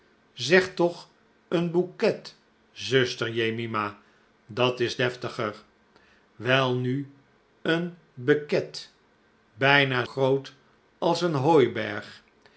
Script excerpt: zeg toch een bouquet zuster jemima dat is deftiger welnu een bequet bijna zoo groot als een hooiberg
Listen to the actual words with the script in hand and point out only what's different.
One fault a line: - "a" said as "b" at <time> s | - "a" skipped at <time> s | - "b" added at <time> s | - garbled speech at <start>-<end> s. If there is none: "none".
- "zoo" skipped at 10.1 s